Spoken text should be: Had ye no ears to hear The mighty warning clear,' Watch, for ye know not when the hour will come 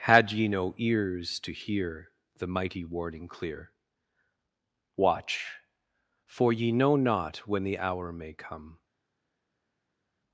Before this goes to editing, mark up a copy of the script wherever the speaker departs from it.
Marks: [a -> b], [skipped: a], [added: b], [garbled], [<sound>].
Had ye no ears to hear The mighty warning clear,' Watch, for ye know not when the hour [will -> may] come